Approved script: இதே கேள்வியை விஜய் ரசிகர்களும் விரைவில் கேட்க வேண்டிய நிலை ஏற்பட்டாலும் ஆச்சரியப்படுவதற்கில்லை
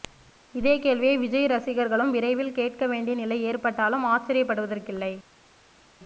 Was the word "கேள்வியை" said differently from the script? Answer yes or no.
no